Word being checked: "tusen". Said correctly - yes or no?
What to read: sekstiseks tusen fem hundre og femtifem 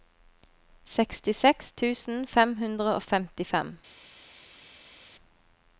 yes